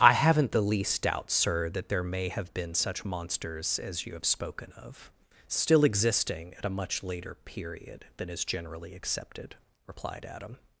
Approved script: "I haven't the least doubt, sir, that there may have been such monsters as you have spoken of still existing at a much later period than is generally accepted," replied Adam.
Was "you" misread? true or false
false